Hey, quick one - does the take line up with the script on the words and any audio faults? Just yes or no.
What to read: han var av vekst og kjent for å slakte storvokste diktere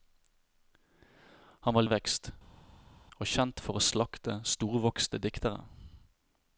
yes